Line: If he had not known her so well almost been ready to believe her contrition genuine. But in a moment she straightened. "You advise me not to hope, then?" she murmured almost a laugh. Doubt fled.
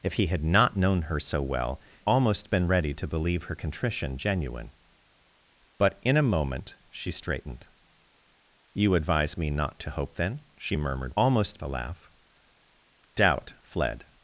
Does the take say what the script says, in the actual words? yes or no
yes